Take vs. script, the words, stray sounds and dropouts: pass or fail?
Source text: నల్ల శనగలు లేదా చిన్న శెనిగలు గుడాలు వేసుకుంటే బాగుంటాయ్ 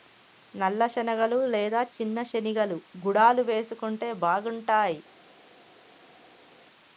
pass